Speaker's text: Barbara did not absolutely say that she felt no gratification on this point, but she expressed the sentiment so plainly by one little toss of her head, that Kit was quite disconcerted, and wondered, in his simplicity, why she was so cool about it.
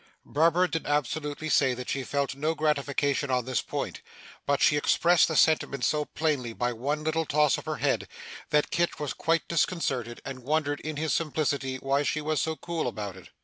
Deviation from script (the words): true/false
true